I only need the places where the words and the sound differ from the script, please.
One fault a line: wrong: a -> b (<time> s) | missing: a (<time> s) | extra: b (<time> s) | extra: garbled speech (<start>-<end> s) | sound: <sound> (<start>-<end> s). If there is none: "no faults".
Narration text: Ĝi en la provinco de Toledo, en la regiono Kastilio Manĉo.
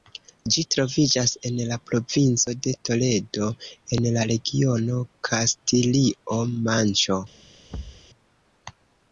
extra: troviĝas (0.8 s)
sound: thud (7.7-8.1 s)